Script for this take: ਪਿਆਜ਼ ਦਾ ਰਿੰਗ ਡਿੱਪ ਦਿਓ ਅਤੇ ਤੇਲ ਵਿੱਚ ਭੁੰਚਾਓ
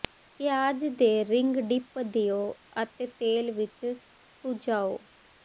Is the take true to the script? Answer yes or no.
no